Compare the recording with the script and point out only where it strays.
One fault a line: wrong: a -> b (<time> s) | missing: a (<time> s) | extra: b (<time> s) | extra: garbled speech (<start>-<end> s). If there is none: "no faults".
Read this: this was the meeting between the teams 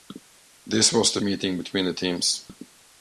no faults